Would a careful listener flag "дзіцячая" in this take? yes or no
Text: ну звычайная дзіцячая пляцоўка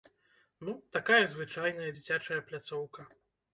no